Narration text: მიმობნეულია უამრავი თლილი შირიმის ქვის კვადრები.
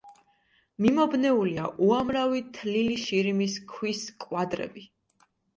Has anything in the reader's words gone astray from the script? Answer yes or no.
no